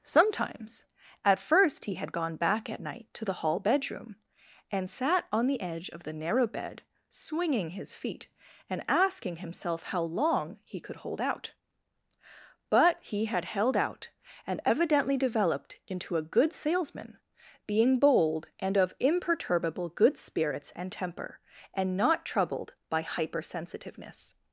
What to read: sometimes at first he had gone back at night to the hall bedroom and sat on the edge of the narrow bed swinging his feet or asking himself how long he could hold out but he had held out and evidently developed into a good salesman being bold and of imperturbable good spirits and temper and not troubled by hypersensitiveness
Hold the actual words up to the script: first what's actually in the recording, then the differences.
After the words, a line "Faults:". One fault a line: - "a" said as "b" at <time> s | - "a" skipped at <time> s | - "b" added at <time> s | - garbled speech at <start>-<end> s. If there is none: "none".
sometimes at first he had gone back at night to the hall bedroom and sat on the edge of the narrow bed swinging his feet and asking himself how long he could hold out but he had held out and evidently developed into a good salesman being bold and of imperturbable good spirits and temper and not troubled by hypersensitiveness
Faults:
- "or" said as "and" at 8.7 s